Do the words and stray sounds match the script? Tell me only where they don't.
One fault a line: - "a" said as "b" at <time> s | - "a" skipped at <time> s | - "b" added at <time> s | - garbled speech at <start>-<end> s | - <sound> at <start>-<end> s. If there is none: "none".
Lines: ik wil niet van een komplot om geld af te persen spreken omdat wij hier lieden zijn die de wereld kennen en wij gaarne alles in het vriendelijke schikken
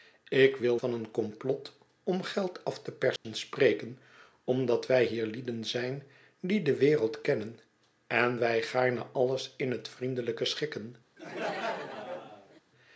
- "niet" skipped at 0.8 s
- dropout at 3.2-3.2 s
- laugh at 11.2-12.6 s